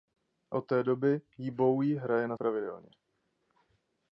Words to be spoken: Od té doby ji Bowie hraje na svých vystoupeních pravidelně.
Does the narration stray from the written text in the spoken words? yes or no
yes